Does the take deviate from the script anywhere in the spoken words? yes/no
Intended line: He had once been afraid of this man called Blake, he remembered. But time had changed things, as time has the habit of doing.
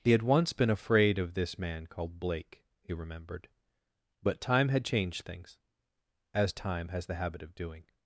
no